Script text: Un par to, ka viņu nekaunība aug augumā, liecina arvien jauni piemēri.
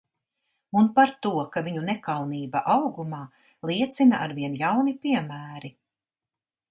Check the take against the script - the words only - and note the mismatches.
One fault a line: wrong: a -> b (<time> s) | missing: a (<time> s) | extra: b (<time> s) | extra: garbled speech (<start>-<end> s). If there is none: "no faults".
missing: aug (2.6 s)